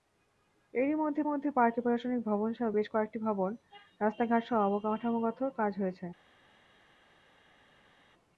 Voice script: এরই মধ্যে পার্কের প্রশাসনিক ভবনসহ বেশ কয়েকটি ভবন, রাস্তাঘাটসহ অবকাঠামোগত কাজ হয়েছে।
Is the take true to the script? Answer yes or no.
no